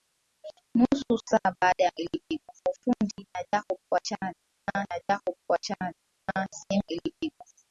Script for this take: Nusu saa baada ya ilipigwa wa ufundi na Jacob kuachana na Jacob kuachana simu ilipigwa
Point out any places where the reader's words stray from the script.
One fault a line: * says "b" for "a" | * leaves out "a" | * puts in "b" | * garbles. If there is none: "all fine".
all fine